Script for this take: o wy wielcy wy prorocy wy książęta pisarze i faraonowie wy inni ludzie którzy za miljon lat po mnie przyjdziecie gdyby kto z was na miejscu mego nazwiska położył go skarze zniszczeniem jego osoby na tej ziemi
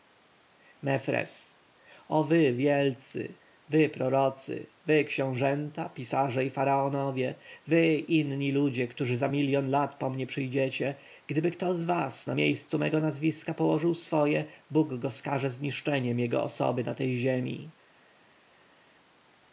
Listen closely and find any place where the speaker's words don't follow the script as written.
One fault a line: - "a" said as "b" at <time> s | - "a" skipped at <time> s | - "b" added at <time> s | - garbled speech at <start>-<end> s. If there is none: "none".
- "swoje bóg" added at 13.9 s